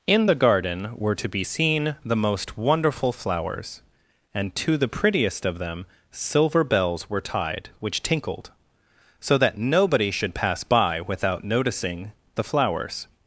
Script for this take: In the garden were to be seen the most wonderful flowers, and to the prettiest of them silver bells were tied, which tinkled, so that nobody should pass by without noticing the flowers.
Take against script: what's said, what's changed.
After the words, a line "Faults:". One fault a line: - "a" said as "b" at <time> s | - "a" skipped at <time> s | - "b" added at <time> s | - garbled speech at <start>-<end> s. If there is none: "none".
In the garden were to be seen the most wonderful flowers, and to the prettiest of them silver bells were tied, which tinkled, so that nobody should pass by without noticing the flowers.
Faults:
none